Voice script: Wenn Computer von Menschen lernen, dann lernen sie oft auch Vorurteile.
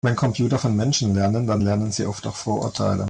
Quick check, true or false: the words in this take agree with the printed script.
true